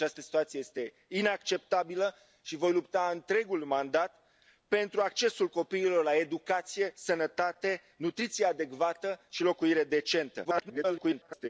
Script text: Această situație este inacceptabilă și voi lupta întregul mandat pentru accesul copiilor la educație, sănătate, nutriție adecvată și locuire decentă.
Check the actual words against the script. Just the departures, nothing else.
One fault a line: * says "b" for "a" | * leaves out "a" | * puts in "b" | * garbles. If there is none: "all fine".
* garbles